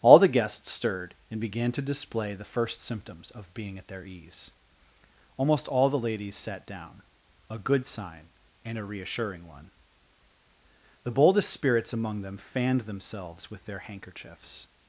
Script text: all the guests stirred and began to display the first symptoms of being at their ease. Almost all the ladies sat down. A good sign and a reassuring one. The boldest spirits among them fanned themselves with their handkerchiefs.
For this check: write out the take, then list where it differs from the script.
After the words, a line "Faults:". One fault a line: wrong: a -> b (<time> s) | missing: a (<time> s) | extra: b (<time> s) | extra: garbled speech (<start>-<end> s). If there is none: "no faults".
all the guests stirred and began to display the first symptoms of being at their ease. Almost all the ladies sat down. A good sign and a reassuring one. The boldest spirits among them fanned themselves with their handkerchiefs.
Faults:
no faults